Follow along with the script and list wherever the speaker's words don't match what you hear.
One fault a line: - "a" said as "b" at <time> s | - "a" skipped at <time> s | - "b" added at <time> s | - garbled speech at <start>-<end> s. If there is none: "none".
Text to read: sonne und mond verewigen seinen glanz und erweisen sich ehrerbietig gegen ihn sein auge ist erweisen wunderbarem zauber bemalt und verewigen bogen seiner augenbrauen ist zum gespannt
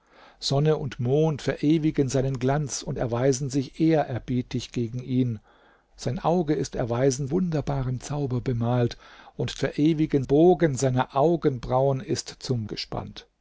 none